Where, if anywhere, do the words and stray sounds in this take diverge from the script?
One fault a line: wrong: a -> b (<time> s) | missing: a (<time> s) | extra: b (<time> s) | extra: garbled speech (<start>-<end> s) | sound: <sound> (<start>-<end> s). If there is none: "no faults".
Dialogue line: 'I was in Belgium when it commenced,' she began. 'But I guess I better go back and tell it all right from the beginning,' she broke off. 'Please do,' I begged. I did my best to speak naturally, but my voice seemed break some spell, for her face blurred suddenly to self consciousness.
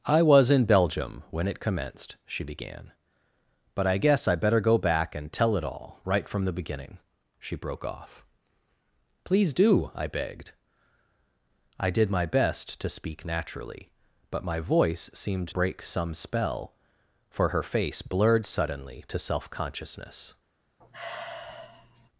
sound: sigh (20.8-22.1 s)